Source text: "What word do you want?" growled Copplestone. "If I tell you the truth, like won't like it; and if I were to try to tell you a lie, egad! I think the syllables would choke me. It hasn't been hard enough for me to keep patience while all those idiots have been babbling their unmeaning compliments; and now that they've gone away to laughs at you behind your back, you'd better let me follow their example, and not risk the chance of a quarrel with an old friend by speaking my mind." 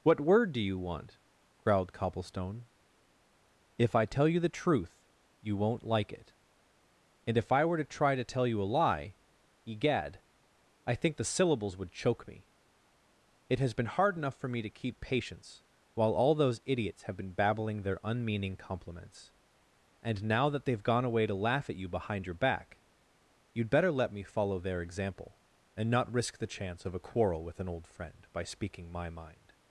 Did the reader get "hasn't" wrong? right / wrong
wrong